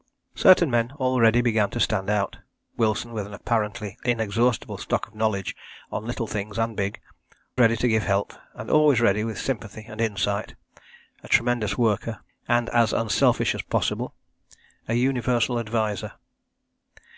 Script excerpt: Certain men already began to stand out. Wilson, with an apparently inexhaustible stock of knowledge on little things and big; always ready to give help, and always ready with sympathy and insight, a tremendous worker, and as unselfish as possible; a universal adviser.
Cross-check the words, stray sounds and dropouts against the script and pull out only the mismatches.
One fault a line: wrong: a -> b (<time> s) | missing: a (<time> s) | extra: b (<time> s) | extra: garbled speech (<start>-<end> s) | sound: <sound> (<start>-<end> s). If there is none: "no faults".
missing: always (7.0 s)